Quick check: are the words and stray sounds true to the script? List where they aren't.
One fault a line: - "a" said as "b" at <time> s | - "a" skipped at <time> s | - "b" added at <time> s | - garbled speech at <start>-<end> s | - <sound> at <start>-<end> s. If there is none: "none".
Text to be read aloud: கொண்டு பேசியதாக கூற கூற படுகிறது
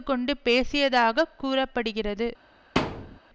- "கூற" skipped at 1.7 s
- thud at 2.8-3.2 s